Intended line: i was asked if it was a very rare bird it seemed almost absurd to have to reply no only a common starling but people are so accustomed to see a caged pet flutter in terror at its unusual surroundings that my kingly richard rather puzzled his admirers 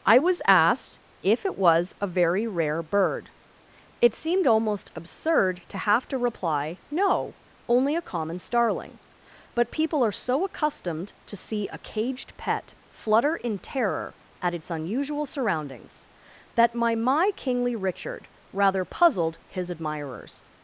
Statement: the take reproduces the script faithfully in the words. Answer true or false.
false